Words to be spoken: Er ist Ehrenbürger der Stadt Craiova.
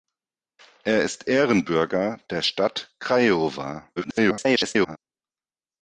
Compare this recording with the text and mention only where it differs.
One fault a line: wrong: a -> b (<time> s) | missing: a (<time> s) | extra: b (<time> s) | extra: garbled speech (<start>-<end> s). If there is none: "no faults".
extra: garbled speech (4.0-5.0 s)